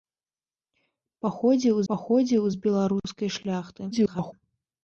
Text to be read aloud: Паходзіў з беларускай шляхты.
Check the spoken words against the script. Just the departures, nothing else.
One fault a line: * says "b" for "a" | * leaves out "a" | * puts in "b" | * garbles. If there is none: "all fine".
* puts in "паходзіў"
* garbles